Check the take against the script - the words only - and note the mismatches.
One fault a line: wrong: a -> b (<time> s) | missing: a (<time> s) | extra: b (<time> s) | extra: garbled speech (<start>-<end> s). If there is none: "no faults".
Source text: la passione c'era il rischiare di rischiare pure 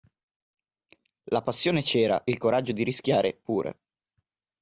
wrong: rischiare -> coraggio (2.4 s)